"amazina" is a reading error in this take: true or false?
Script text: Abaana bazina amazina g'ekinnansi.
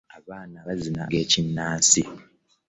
true